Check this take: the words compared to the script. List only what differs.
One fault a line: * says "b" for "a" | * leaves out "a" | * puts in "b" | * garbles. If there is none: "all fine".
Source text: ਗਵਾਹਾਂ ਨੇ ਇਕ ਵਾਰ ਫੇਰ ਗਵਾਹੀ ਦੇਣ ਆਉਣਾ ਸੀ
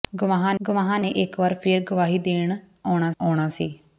* puts in "ਗਵਾਹਾਂ"
* puts in "ਆਉਣਾ"